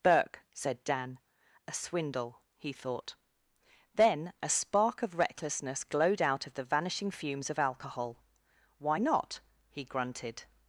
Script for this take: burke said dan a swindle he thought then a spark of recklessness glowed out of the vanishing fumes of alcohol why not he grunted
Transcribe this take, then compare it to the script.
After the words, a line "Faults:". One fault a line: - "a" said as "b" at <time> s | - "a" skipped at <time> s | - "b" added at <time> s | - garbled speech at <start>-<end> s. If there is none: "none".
burke said dan a swindle he thought then a spark of recklessness glowed out of the vanishing fumes of alcohol why not he grunted
Faults:
none